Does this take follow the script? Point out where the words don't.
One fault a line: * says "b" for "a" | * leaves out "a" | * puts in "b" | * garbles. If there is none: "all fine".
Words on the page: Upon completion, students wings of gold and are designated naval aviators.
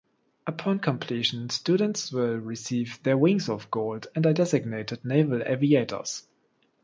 * puts in "will receive their"